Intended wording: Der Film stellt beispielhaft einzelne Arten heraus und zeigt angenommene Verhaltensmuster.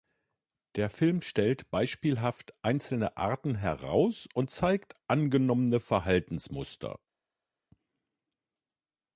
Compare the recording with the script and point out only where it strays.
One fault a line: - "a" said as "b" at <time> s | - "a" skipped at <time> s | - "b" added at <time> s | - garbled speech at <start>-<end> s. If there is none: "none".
none